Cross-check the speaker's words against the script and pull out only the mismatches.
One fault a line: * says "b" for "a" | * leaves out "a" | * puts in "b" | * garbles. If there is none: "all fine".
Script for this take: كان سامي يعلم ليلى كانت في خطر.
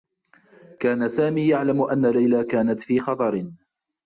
* puts in "أنّ"